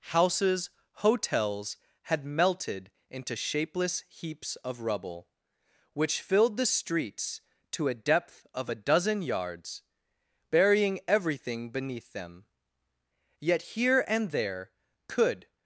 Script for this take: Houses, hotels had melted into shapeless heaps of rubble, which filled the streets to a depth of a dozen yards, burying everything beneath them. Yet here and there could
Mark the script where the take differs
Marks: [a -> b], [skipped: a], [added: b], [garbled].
Houses, hotels had melted into shapeless heaps of rubble, which filled the streets to a depth of a dozen yards, burying everything beneath them. Yet here and there could